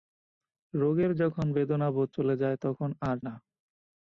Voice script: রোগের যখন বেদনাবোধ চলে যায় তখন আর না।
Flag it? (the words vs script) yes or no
no